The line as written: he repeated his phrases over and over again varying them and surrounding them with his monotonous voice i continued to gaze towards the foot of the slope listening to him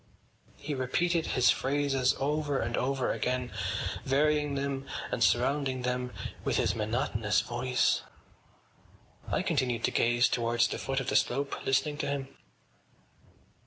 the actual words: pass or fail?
pass